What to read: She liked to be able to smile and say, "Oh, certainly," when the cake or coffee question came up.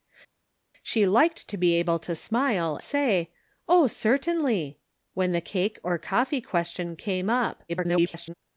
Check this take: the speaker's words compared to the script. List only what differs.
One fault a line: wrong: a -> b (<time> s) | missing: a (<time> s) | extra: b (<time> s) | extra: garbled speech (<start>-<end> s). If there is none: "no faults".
missing: and (2.8 s)
extra: garbled speech (7.7-8.3 s)